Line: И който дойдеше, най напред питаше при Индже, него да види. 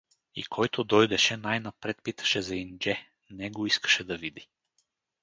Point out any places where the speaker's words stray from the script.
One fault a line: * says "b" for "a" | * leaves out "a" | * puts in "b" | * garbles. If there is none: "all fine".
* says "за" for "при"
* puts in "искаше"